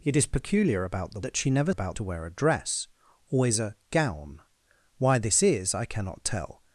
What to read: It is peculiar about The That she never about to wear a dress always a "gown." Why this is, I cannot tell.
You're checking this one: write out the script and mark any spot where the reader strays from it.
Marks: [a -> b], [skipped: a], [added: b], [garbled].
It is peculiar about The That she never about to wear a dress always a "gown." Why this is, I cannot tell.